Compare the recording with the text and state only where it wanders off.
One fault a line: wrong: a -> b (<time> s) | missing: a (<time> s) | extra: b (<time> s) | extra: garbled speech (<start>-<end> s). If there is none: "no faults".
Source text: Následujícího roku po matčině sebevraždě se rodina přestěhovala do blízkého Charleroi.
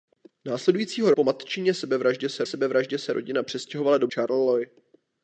missing: roku (1.1 s)
extra: sebevraždě se (2.4 s)
missing: blízkého (4.1 s)